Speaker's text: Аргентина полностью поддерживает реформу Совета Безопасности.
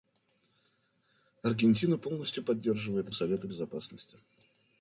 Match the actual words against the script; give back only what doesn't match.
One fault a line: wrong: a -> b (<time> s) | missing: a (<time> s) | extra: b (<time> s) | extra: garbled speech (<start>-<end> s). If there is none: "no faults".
missing: реформу (3.1 s)